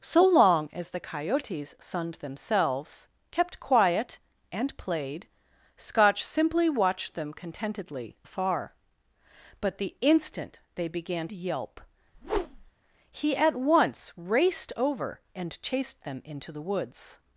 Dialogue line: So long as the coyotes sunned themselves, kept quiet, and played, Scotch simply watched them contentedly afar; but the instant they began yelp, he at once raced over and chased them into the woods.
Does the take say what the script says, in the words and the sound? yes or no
no